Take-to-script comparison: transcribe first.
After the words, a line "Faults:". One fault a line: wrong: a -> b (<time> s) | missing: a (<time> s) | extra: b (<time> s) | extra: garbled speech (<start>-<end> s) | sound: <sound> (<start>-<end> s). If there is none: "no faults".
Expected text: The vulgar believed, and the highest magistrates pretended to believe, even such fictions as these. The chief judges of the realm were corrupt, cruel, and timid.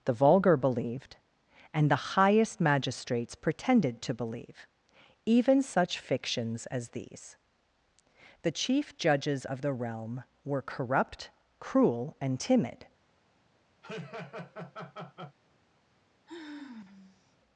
The vulgar believed, and the highest magistrates pretended to believe, even such fictions as these. The chief judges of the realm were corrupt, cruel, and timid.
Faults:
sound: laugh (13.8-15.4 s)
sound: sigh (16.3-17.4 s)